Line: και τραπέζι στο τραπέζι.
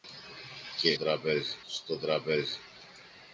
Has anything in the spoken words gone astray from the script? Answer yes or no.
no